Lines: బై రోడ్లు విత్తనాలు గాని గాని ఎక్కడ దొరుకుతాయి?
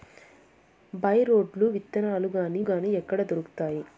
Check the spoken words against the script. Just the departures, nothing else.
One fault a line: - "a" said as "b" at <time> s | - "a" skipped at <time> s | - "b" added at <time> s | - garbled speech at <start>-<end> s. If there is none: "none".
none